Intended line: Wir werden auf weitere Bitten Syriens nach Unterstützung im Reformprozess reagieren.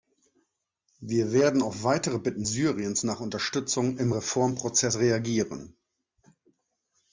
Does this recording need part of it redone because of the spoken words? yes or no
no